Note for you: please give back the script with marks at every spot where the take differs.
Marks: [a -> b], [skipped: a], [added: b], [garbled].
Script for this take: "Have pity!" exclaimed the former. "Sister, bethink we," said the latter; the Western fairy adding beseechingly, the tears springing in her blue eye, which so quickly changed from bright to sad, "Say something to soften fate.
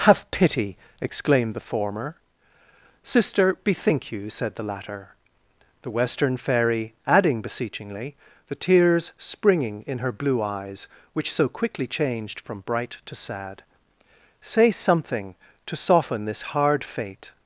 "Have pity!" exclaimed the former. "Sister, bethink [we," -> you] said the latter; the Western fairy adding beseechingly, the tears springing in her blue [eye, -> eyes] which so quickly changed from bright to sad, "Say something to soften [added: this hard] fate.